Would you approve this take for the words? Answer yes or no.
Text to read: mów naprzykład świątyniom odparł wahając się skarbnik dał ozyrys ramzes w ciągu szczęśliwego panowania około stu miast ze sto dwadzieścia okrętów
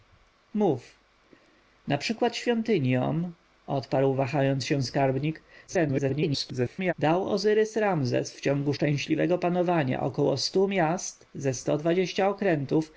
no